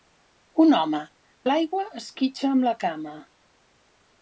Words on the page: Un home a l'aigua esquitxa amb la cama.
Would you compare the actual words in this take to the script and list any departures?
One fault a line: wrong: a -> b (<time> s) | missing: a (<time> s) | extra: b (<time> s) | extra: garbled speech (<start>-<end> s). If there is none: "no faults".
no faults